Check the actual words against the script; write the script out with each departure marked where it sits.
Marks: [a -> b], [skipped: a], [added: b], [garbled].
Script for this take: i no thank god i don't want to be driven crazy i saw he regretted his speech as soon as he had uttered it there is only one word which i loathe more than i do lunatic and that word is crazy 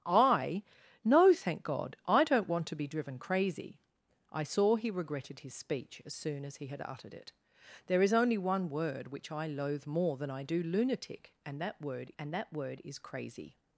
i no thank god i don't want to be driven crazy i saw he regretted his speech as soon as he had uttered it there is only one word which i loathe more than i do lunatic and that word [added: and that word] is crazy